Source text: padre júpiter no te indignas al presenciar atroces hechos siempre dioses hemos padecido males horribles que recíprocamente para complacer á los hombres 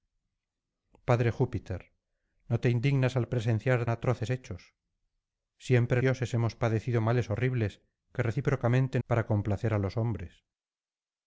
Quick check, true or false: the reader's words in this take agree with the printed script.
true